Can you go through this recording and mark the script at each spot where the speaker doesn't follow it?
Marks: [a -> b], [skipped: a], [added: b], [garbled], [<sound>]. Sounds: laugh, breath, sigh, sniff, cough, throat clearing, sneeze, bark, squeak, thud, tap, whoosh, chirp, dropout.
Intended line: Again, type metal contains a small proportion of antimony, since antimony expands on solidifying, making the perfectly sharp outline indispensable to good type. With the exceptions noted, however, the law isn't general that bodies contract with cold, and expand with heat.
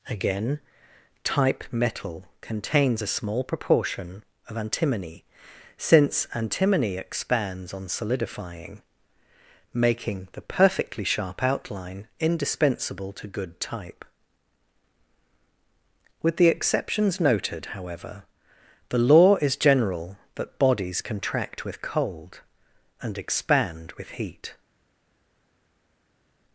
Again, type metal contains a small proportion of antimony, since antimony expands on solidifying, making the perfectly sharp outline indispensable to good type. With the exceptions noted, however, the law [isn't -> is] general that bodies contract with cold, and expand with heat.